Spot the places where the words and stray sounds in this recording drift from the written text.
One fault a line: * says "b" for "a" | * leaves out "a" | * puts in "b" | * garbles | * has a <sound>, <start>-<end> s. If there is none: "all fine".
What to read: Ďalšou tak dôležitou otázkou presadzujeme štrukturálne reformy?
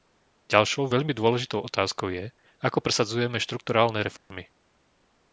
* says "veľmi" for "tak"
* puts in "je ako"
* has a dropout, 4.2-4.3 s